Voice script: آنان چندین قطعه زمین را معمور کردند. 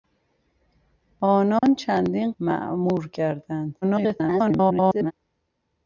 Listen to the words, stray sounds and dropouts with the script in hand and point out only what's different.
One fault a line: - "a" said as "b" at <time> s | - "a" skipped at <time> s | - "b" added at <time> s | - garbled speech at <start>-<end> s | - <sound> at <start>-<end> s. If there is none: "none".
- dropout at 1.6-1.6 s
- "قطعه زمین را" skipped at 2.3 s
- garbled speech at 3.8-5.1 s